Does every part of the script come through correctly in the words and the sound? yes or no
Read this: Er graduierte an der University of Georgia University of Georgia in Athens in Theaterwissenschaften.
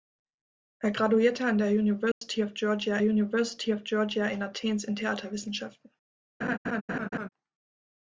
no